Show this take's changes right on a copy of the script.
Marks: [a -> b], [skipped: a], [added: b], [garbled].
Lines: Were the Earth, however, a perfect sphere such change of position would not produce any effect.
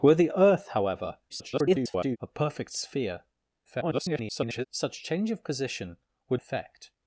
Were the Earth, however, [garbled] a perfect sphere [garbled] such change of position would [skipped: not produce any] effect.